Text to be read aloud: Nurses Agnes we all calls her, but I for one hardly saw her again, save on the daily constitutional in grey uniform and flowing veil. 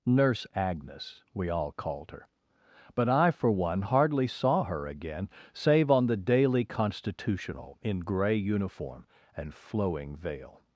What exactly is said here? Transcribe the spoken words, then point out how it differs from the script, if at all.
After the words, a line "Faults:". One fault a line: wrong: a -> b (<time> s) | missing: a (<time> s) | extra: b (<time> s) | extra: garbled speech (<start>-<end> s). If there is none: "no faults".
Nurse Agnes we all called her, but I for one hardly saw her again, save on the daily constitutional in grey uniform and flowing veil.
Faults:
wrong: Nurses -> Nurse (0.0 s)
wrong: calls -> called (1.7 s)